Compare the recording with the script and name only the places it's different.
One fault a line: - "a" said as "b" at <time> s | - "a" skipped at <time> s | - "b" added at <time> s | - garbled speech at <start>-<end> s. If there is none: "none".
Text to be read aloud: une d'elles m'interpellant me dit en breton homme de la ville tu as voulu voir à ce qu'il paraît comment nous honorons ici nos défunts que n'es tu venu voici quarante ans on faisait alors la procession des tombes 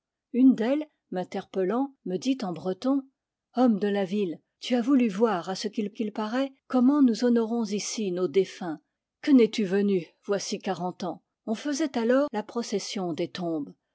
- "qu'il" added at 5.9 s